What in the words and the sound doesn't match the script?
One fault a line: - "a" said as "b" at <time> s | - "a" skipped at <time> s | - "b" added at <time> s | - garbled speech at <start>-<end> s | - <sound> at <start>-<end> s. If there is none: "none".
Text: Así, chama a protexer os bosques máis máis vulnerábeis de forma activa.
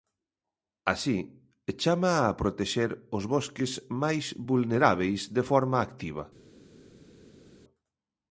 - "máis" skipped at 4.2 s